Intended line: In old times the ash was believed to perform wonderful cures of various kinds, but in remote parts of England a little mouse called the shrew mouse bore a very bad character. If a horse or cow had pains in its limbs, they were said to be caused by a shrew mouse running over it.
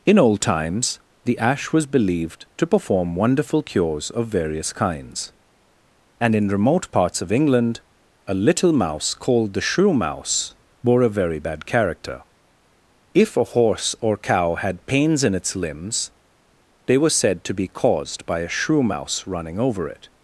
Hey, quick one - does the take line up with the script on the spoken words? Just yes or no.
no